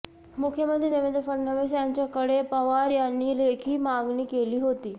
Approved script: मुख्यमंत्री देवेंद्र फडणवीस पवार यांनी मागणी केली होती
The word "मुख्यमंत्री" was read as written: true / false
true